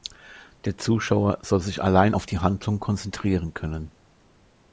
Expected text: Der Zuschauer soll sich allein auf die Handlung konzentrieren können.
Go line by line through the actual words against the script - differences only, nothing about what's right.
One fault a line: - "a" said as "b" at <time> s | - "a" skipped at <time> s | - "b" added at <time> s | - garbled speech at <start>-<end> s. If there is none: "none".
none